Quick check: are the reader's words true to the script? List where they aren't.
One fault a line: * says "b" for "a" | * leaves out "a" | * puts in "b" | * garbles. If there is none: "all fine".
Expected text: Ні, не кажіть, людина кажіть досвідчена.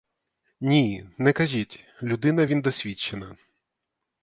* says "він" for "кажіть"